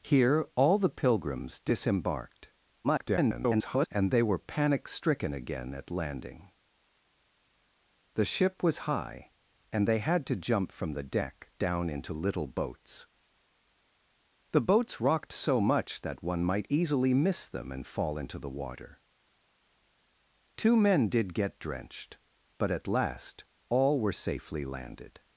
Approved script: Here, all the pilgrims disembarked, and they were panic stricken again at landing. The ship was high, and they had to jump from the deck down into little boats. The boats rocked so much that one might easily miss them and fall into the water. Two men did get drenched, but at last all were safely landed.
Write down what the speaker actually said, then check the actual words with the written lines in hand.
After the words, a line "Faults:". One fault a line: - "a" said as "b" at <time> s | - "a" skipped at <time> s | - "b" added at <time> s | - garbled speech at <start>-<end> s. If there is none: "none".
Here, all the pilgrims disembarked, [garbled] and they were panic stricken again at landing. The ship was high, and they had to jump from the deck down into little boats. The boats rocked so much that one might easily miss them and fall into the water. Two men did get drenched, but at last all were safely landed.
Faults:
- garbled speech at 2.8-3.9 s